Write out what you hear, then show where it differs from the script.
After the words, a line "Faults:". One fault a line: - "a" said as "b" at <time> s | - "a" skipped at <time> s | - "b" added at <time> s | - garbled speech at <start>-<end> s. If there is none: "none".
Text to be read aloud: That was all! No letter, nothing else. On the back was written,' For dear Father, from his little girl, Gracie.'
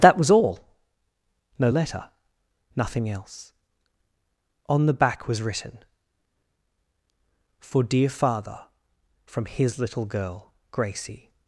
That was all! No letter, nothing else. On the back was written,' For dear Father, from his little girl, Gracie.'
Faults:
none